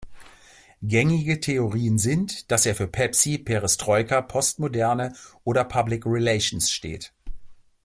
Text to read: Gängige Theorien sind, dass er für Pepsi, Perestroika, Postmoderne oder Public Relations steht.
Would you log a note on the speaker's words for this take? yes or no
no